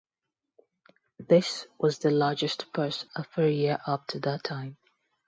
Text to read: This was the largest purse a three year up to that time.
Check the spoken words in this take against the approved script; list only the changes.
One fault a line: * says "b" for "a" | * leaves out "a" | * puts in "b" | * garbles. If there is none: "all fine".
all fine